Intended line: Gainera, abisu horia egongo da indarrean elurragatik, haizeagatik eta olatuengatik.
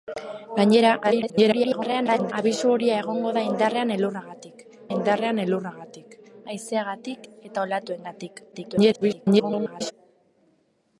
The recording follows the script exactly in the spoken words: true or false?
false